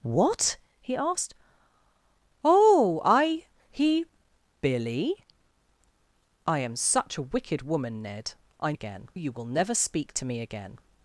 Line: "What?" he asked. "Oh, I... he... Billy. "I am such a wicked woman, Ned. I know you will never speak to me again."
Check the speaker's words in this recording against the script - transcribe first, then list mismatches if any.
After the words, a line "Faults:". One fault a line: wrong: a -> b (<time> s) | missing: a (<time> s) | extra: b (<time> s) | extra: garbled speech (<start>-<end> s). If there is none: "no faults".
"What?" he asked. "Oh, I... he... Billy. "I am such a wicked woman, Ned. I again you will never speak to me again."
Faults:
wrong: know -> again (8.7 s)